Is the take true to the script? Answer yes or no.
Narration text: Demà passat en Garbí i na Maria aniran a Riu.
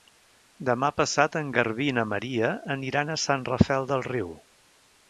no